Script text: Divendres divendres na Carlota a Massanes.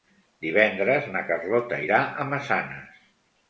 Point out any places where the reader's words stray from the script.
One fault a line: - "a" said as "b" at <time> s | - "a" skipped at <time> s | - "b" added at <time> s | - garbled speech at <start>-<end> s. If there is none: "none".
- "divendres" skipped at 1.1 s
- "irà" added at 1.8 s